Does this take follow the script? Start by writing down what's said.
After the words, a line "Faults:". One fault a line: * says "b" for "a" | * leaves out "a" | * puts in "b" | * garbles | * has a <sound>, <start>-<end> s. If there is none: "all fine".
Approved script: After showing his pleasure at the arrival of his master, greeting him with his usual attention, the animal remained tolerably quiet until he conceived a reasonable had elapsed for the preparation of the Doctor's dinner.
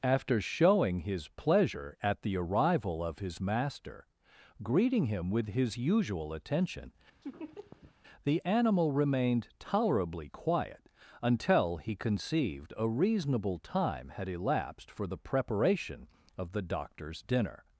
After showing his pleasure at the arrival of his master, greeting him with his usual attention, the animal remained tolerably quiet until he conceived a reasonable time had elapsed for the preparation of the Doctor's dinner.
Faults:
* has a laugh, 7.2-7.9 s
* puts in "time"